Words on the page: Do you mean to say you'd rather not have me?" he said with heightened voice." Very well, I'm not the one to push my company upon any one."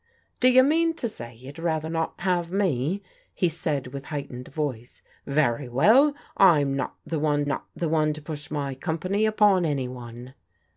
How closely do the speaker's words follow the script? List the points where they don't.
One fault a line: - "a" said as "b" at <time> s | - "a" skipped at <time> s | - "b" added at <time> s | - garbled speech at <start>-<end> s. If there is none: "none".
- "not the one" added at 7.4 s